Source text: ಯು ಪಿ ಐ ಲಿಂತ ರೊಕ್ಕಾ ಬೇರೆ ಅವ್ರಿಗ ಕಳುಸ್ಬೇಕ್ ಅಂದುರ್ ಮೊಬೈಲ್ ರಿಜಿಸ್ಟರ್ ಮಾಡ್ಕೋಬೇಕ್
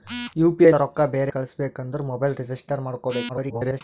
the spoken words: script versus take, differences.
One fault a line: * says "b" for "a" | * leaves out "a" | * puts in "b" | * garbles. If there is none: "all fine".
* leaves out "ಲಿಂತ"
* leaves out "ಅವ್ರಿಗ"
* garbles